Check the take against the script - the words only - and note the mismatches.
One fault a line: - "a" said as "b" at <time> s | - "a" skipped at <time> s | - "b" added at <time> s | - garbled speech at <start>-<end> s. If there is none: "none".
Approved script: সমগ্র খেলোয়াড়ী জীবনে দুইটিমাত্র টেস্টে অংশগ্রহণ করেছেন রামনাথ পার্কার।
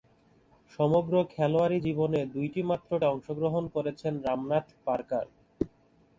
- "টেস্টে" skipped at 2.9 s